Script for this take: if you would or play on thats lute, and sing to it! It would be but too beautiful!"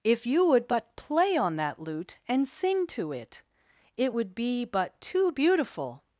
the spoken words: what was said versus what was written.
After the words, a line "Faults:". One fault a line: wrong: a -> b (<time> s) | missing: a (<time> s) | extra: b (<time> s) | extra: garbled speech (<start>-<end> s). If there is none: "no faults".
if you would but play on that lute, and sing to it! It would be but too beautiful!"
Faults:
wrong: or -> but (0.7 s)
wrong: thats -> that (1.6 s)